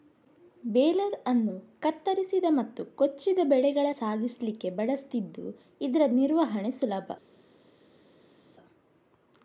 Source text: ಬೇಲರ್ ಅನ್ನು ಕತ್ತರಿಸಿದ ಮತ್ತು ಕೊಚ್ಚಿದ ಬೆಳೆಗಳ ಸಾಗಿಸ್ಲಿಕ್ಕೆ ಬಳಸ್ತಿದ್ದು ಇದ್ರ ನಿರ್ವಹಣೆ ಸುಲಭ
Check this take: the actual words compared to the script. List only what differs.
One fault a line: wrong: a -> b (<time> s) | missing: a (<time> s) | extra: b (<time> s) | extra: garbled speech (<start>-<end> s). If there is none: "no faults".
no faults